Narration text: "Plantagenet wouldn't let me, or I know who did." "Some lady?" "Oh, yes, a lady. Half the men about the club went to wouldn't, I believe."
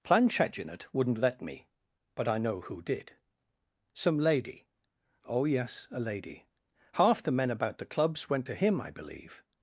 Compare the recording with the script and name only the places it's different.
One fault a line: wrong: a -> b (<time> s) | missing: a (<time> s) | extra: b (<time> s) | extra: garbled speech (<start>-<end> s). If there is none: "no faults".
wrong: or -> but (2.1 s)
wrong: club -> clubs (7.8 s)
wrong: wouldn't -> him (8.5 s)